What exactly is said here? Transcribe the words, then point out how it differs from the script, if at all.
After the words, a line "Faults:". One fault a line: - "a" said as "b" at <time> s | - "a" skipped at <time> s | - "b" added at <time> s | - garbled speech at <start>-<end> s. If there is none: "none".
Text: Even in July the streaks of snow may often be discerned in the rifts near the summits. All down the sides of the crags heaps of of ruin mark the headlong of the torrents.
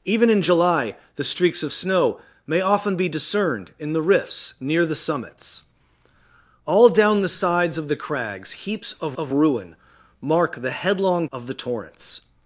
Even in July the streaks of snow may often be discerned in the rifts near the summits. All down the sides of the crags heaps of of ruin mark the headlong of the torrents.
Faults:
none